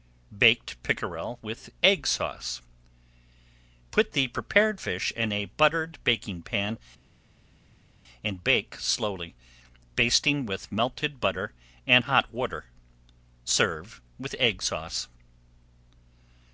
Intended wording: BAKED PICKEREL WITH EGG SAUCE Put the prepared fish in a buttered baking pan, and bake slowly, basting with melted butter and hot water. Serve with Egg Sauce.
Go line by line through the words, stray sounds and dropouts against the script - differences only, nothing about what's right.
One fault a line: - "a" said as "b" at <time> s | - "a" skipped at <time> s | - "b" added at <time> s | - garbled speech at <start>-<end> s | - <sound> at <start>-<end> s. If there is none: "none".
none